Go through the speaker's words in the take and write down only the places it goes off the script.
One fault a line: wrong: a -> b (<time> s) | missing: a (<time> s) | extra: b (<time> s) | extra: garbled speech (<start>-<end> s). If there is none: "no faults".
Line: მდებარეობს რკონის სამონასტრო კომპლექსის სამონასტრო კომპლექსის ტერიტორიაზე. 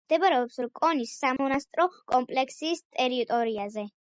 missing: სამონასტრო კომპლექსის (2.9 s)